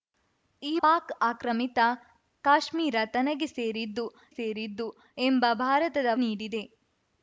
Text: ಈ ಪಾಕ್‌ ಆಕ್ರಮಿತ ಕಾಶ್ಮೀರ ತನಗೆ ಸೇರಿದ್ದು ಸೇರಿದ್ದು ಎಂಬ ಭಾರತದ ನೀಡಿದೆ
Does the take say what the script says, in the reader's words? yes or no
yes